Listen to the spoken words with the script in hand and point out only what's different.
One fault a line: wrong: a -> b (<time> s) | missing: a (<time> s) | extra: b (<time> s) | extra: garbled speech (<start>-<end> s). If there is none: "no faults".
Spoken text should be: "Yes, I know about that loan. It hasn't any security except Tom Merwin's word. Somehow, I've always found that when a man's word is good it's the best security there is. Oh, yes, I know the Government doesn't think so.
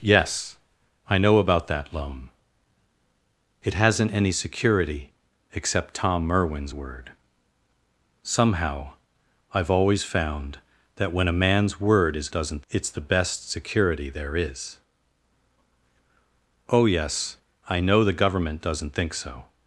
wrong: good -> doesn't (12.3 s)